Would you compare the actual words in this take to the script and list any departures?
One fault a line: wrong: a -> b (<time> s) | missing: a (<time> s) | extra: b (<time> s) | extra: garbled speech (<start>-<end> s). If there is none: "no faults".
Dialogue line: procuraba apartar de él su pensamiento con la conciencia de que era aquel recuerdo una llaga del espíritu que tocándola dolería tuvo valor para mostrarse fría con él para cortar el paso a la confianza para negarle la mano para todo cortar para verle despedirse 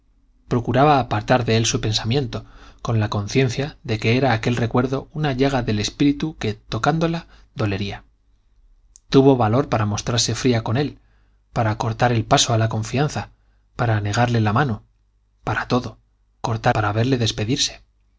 no faults